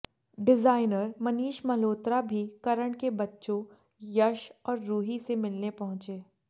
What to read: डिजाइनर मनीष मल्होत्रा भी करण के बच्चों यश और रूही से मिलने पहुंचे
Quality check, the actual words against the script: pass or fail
pass